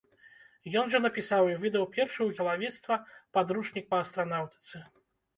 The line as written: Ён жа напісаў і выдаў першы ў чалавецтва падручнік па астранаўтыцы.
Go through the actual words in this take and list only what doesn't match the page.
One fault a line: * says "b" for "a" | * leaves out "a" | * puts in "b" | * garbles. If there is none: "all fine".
all fine